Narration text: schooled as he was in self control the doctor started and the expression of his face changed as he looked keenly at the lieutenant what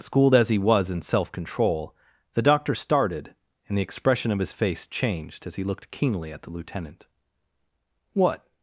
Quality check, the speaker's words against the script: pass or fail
pass